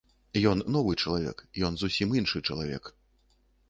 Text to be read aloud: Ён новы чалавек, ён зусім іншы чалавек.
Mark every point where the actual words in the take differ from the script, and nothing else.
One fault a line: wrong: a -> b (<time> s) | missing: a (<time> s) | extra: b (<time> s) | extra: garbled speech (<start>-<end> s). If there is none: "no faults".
no faults